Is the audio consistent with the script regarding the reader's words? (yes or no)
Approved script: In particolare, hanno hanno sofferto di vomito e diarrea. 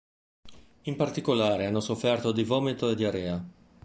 no